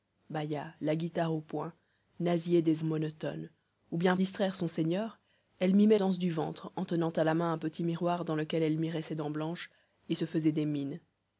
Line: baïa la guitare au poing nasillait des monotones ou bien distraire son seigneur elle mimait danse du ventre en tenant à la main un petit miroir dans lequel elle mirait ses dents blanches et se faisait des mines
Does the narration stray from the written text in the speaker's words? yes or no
no